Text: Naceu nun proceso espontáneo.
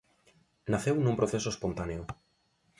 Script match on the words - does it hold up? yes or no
yes